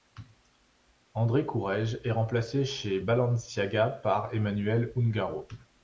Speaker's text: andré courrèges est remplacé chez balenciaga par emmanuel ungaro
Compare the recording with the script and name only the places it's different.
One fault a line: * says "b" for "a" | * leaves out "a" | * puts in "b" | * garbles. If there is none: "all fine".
all fine